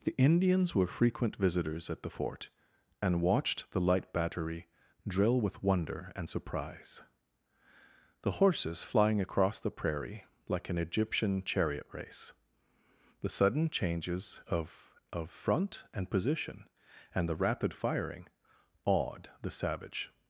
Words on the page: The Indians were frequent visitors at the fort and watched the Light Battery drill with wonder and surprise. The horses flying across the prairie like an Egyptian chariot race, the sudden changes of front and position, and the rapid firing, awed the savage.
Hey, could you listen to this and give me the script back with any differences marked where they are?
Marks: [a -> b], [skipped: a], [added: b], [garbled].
The Indians were frequent visitors at the fort and watched the Light Battery drill with wonder and surprise. The horses flying across the prairie like an Egyptian chariot race, the sudden changes of [added: of] front and position, and the rapid firing, awed the savage.